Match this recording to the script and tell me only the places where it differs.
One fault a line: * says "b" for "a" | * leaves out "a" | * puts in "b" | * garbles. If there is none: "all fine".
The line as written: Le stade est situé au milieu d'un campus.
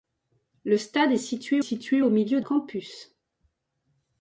* puts in "situé"
* leaves out "d'un"